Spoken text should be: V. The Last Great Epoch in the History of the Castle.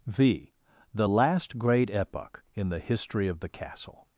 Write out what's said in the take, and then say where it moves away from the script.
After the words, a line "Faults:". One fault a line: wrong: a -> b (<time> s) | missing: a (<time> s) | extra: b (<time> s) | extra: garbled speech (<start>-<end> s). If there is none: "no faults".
V. The Last Great Epoch in the History of the Castle.
Faults:
no faults